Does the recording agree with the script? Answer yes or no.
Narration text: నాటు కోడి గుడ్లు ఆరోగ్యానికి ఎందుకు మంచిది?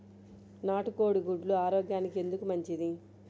yes